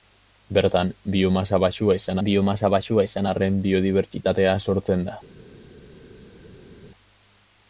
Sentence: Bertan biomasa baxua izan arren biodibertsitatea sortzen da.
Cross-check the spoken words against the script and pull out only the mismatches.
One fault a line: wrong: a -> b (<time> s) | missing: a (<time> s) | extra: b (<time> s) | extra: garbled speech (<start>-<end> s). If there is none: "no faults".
extra: biomasa baxua izan (2.3 s)